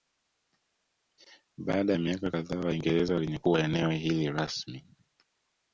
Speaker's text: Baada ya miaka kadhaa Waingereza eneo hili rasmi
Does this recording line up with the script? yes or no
no